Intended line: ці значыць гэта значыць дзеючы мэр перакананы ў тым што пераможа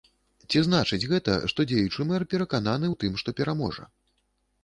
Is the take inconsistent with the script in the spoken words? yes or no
yes